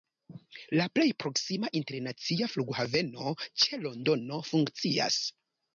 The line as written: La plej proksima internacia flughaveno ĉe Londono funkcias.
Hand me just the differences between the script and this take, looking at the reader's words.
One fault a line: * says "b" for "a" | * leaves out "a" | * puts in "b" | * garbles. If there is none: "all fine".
all fine